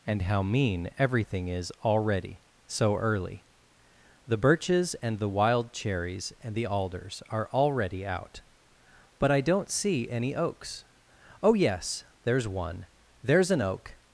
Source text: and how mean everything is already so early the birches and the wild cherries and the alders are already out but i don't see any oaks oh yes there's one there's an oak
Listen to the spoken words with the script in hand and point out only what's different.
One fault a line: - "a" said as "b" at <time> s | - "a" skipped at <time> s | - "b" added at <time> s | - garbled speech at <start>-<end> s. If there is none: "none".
none